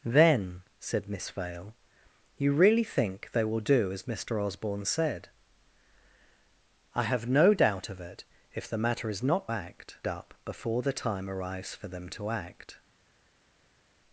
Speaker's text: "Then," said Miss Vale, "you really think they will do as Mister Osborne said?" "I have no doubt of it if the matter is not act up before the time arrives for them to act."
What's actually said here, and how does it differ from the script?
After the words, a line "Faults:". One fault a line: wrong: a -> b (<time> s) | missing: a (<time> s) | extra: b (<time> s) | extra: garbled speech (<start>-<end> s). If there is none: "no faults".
"Then," said Miss Vale, "you really think they will do as Mister Osborne said?" "I have no doubt of it if the matter is not act up before the time arrives for them to act."
Faults:
no faults